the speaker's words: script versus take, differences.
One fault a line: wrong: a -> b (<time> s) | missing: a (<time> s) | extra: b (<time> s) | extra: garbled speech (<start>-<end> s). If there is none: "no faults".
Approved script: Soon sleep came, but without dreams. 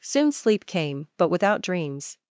no faults